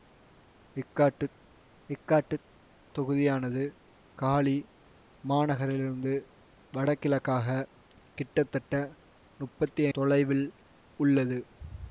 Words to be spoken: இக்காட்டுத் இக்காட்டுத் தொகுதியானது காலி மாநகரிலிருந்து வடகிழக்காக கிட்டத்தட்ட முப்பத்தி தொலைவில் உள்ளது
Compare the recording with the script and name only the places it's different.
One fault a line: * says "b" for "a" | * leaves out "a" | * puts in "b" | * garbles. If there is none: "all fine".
all fine